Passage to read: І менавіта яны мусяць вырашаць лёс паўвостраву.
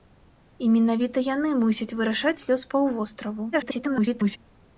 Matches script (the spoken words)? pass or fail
fail